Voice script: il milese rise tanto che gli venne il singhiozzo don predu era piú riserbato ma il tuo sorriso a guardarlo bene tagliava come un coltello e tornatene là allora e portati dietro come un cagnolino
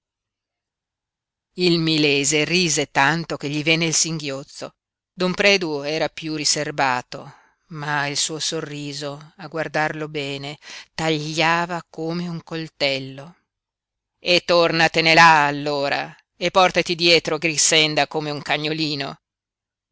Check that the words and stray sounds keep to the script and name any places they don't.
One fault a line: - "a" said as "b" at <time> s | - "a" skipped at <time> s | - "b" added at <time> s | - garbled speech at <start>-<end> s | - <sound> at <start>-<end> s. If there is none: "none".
- "tuo" said as "suo" at 8.2 s
- "grixenda" added at 17.4 s